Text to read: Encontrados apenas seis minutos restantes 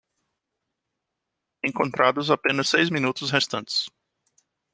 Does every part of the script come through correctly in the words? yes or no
yes